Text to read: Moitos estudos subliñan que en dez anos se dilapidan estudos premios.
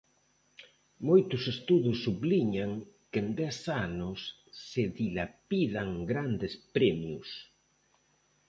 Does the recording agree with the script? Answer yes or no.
no